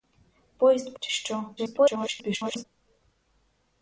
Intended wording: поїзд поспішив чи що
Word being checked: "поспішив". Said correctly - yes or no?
no